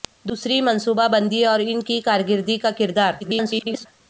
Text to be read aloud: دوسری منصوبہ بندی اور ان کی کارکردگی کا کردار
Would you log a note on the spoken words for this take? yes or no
yes